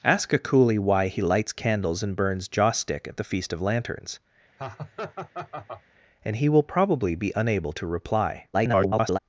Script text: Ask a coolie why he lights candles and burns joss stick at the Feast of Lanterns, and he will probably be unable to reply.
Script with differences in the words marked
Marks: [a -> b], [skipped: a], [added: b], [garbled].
Ask a coolie why he lights candles and burns joss stick at the Feast of Lanterns, and he will probably be unable to reply. [garbled]